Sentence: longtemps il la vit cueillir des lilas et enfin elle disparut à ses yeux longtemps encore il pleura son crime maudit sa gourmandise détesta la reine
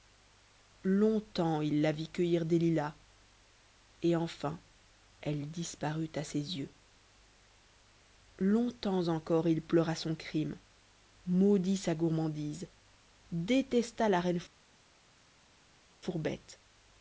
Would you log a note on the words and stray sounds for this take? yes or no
no